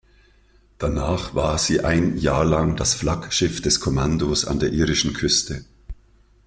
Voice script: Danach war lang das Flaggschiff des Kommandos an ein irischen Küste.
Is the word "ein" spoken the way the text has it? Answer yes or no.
no